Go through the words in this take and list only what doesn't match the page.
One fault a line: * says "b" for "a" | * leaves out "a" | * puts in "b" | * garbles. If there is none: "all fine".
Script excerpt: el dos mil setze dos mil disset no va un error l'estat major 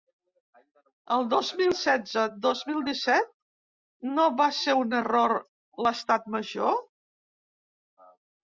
* puts in "ser"